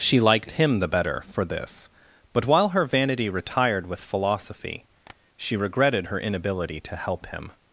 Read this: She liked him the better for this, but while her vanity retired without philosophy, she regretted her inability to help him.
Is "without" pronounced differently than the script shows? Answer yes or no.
yes